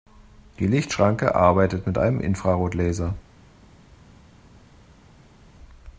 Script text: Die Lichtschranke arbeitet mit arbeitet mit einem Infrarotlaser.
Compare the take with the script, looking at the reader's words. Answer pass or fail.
fail